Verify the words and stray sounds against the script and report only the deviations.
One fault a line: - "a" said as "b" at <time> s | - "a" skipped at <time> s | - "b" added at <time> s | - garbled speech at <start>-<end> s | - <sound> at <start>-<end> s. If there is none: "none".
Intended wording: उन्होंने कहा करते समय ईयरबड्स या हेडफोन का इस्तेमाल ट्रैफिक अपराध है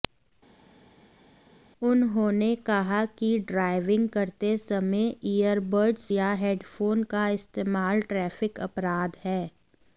- "कि ड्राइविंग" added at 3.2 s